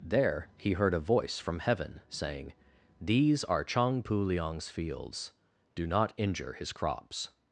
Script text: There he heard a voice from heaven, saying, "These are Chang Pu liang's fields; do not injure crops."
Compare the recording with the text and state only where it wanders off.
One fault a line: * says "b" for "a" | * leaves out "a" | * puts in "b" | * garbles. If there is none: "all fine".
* puts in "his"